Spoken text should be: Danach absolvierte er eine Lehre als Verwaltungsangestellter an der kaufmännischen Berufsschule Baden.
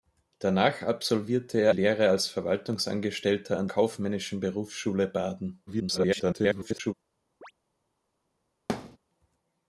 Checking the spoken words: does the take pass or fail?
fail